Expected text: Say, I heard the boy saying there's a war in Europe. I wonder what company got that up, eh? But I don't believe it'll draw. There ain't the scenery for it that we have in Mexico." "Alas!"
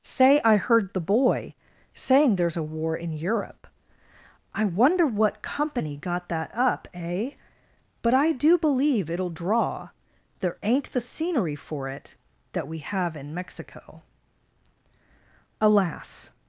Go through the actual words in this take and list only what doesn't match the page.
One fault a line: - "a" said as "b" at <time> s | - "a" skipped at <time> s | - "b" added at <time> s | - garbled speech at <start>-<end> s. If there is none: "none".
- "don't" said as "do" at 8.3 s